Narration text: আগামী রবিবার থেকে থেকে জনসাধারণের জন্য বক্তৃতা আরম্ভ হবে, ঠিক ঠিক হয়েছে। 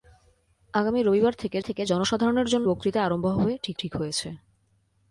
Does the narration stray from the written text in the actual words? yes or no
no